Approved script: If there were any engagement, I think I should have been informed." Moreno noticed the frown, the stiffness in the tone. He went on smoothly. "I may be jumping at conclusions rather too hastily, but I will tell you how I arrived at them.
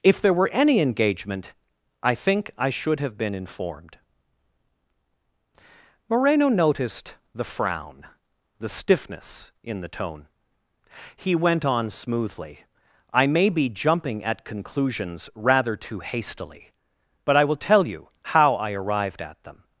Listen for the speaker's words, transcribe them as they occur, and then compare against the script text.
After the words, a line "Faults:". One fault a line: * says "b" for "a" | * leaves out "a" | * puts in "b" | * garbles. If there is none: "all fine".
If there were any engagement, I think I should have been informed." Moreno noticed the frown, the stiffness in the tone. He went on smoothly. "I may be jumping at conclusions rather too hastily, but I will tell you how I arrived at them.
Faults:
all fine